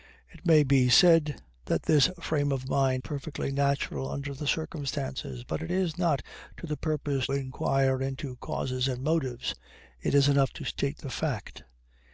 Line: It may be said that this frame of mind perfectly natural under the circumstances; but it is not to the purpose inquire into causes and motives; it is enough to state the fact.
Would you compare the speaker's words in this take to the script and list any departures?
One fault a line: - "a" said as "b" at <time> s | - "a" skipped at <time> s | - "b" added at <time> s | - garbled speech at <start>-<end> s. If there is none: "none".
none